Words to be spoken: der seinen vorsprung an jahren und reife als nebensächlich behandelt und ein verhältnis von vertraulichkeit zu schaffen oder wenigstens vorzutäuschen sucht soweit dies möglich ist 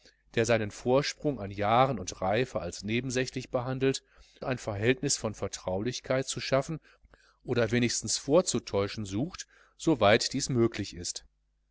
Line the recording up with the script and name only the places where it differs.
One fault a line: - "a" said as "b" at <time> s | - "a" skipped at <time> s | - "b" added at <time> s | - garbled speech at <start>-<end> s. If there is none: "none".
- "und" skipped at 4.0 s